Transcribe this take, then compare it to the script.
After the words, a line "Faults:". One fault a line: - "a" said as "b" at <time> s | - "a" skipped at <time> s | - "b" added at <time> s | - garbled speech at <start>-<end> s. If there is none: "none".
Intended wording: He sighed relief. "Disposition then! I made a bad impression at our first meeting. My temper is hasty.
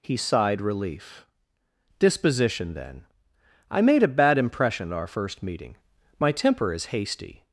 He sighed relief. "Disposition then! I made a bad impression at our first meeting. My temper is hasty.
Faults:
none